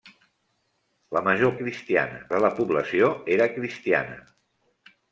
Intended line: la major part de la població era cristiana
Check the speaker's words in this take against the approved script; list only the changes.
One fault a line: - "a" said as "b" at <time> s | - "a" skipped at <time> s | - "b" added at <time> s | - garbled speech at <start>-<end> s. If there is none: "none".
- "part" said as "cristiana" at 1.6 s